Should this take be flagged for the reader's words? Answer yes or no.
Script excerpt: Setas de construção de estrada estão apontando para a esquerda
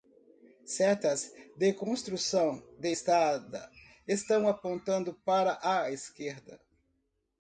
no